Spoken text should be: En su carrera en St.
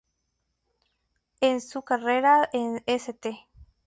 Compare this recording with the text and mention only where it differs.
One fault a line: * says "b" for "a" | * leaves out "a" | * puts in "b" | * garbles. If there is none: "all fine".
all fine